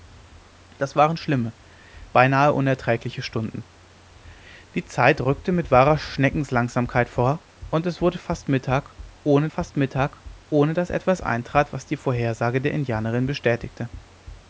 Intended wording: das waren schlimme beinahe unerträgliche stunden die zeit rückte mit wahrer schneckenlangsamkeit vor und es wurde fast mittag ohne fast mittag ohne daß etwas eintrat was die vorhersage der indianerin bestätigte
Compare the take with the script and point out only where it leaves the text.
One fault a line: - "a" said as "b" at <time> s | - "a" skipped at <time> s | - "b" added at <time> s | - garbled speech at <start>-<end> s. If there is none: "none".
none